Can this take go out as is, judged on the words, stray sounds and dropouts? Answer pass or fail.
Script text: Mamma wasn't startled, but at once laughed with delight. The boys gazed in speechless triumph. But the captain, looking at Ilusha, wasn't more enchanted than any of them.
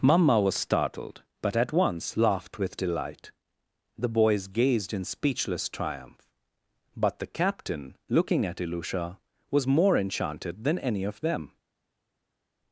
fail